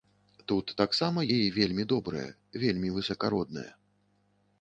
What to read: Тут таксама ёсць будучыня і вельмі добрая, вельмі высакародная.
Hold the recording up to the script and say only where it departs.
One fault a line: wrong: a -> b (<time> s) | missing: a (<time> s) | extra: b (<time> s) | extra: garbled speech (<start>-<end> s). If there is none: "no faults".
missing: ёсць будучыня (1.2 s)